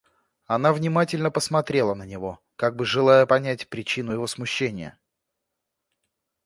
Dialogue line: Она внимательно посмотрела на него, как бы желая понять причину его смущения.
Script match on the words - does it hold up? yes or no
yes